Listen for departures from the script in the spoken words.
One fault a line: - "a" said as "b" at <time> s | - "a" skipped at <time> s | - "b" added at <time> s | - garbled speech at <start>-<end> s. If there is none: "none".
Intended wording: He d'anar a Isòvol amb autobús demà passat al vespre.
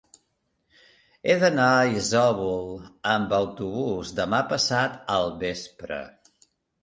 none